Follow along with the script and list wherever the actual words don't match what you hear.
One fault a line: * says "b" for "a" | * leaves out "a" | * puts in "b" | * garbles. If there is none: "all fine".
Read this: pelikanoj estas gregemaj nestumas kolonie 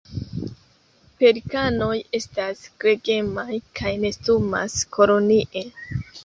* puts in "kaj"